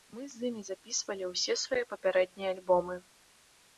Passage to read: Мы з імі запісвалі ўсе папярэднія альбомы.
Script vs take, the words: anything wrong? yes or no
yes